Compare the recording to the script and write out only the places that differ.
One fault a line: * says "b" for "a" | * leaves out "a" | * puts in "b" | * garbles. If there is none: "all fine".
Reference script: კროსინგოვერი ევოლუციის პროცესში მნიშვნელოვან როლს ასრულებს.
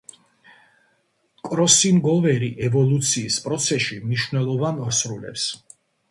* leaves out "როლს"